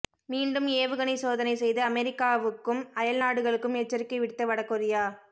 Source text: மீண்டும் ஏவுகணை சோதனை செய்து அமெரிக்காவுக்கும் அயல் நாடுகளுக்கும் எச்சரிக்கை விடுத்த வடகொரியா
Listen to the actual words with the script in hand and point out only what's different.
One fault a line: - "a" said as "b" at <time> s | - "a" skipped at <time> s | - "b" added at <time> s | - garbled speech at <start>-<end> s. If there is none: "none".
none